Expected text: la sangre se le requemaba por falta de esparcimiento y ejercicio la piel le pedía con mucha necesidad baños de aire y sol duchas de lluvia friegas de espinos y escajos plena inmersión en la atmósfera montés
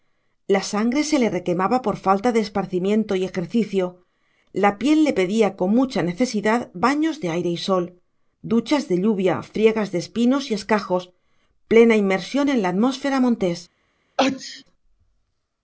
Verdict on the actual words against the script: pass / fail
pass